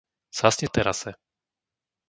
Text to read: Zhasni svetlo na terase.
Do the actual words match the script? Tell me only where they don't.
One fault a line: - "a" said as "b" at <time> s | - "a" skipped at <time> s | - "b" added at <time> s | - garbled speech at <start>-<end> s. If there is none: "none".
- "svetlo" skipped at 0.7 s